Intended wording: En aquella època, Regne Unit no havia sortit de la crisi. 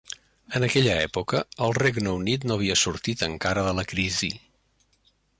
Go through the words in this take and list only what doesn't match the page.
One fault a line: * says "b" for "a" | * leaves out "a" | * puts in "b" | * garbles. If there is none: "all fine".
* puts in "el"
* puts in "encara"